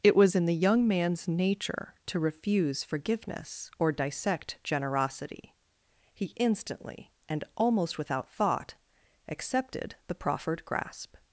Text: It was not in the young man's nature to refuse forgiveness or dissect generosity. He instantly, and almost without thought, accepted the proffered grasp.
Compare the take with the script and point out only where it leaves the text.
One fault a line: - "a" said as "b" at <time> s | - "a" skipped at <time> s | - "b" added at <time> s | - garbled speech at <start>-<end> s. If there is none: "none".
- "not" skipped at 0.3 s